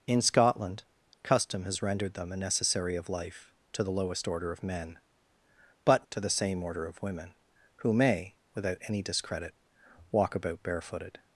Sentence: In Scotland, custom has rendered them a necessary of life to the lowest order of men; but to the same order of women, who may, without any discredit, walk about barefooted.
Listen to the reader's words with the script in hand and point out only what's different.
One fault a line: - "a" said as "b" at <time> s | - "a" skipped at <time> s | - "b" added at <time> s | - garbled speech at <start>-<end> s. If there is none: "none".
none